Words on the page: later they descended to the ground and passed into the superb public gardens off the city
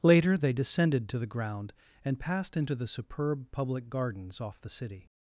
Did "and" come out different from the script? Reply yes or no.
no